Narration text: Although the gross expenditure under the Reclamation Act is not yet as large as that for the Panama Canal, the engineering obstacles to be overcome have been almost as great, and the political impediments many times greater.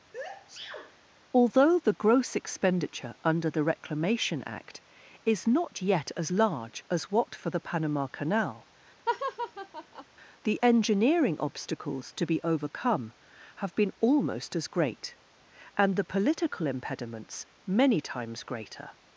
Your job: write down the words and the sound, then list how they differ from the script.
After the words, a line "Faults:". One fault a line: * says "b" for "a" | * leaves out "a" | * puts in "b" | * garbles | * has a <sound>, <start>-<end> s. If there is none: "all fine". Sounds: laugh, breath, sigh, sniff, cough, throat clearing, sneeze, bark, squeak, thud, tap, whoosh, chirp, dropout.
Although the gross expenditure under the Reclamation Act is not yet as large as what for the Panama Canal, the engineering obstacles to be overcome have been almost as great, and the political impediments many times greater.
Faults:
* has a sneeze, 0.1-1.0 s
* says "what" for "that"
* has a laugh, 9.1-10.0 s